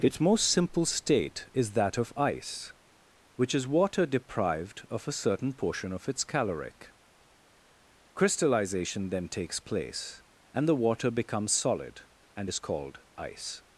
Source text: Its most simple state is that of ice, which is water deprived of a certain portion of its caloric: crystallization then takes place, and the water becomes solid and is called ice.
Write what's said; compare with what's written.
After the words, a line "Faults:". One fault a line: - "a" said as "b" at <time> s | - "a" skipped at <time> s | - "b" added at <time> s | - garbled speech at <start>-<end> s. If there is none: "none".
Its most simple state is that of ice, which is water deprived of a certain portion of its caloric: crystallization then takes place, and the water becomes solid and is called ice.
Faults:
none